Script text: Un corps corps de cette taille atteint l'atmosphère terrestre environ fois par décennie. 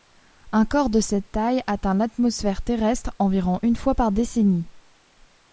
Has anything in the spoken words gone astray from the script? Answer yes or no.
yes